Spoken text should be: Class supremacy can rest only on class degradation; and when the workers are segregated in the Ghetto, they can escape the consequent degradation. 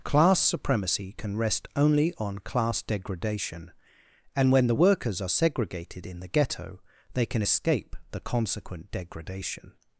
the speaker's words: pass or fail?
pass